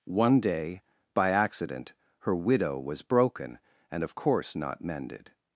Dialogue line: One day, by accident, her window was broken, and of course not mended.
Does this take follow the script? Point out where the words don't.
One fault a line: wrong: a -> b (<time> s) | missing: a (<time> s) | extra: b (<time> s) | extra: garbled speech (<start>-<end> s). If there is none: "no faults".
wrong: window -> widow (2.4 s)